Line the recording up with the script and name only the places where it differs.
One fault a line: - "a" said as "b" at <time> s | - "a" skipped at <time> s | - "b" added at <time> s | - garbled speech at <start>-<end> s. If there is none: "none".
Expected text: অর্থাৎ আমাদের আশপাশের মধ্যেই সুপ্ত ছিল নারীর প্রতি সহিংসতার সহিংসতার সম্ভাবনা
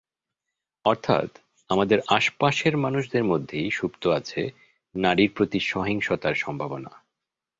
- "মানুষদের" added at 2.8 s
- "ছিল" said as "আছে" at 4.1 s
- "সহিংসতার" skipped at 6.3 s